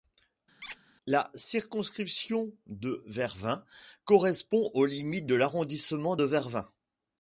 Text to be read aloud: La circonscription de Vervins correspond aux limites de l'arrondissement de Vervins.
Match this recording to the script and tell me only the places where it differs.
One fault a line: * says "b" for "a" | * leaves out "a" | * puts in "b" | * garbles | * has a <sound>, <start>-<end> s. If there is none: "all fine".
* has a squeak, 0.6-0.8 s